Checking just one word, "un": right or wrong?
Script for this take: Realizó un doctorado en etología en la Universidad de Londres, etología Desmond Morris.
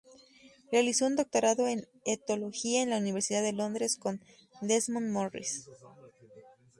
right